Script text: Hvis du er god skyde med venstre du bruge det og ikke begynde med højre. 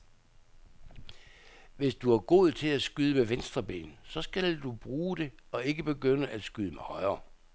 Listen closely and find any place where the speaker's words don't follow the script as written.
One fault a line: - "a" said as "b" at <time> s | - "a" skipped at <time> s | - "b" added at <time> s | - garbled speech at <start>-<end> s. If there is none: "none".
- "til at" added at 2.5 s
- "ben så skal" added at 3.6 s
- "at skyde" added at 6.2 s